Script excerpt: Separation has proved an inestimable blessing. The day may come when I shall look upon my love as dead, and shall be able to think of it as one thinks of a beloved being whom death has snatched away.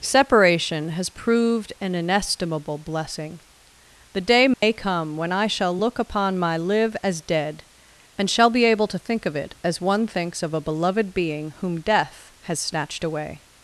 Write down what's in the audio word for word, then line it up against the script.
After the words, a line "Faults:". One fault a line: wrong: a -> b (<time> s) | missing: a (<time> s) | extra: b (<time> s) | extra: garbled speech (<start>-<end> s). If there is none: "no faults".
Separation has proved an inestimable blessing. The day may come when I shall look upon my live as dead, and shall be able to think of it as one thinks of a beloved being whom death has snatched away.
Faults:
wrong: love -> live (6.6 s)